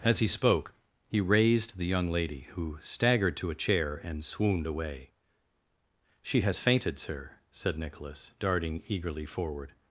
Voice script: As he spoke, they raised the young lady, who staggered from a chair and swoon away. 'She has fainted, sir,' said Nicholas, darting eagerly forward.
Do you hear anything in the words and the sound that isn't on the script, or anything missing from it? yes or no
yes